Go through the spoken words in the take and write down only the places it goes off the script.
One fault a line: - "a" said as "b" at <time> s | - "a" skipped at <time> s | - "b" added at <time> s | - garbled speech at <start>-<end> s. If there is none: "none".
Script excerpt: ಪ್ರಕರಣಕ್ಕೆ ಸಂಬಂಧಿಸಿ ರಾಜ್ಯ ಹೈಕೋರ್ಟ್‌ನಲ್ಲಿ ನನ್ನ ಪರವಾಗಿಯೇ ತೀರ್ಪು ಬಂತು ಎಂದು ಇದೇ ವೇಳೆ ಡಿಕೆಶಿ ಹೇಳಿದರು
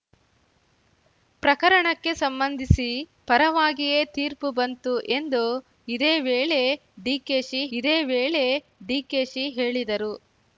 - "ರಾಜ್ಯ ಹೈಕೋರ್ಟ್‌ನಲ್ಲಿ ನನ್ನ" skipped at 2.9 s
- "ಇದೇ ವೇಳೆ ಡಿಕೆಶಿ" added at 7.7 s